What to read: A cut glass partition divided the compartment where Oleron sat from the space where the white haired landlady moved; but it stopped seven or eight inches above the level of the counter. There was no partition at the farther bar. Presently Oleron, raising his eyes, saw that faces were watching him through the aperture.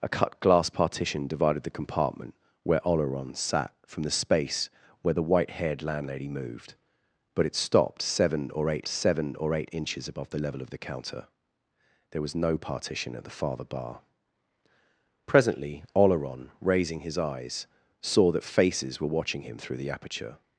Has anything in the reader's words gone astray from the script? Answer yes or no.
yes